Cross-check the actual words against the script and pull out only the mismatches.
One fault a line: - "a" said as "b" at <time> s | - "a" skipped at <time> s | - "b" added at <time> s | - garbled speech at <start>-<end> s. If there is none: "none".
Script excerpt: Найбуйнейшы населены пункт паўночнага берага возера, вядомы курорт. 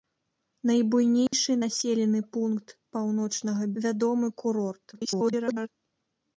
- "берага возера" skipped at 3.6 s
- garbled speech at 4.9-5.7 s